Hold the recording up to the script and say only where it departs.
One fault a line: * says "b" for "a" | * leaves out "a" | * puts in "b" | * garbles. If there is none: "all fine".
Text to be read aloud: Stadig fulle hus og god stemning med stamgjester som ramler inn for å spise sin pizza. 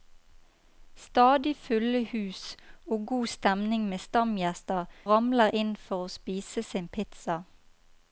* leaves out "som"